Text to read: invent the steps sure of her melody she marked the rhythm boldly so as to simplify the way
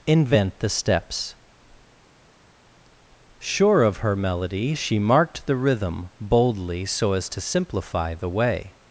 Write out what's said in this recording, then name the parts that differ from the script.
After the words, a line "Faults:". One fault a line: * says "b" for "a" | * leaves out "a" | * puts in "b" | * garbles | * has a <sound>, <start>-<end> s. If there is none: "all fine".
invent the steps sure of her melody she marked the rhythm boldly so as to simplify the way
Faults:
all fine